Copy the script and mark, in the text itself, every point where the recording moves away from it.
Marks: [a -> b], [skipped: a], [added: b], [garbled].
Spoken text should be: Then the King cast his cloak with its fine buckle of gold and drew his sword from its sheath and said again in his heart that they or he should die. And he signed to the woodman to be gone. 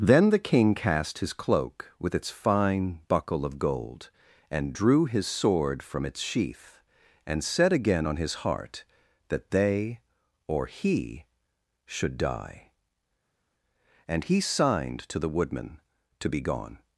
Then the King cast his cloak with its fine buckle of gold and drew his sword from its sheath and said again [in -> on] his heart that they or he should die. And he signed to the woodman to be gone.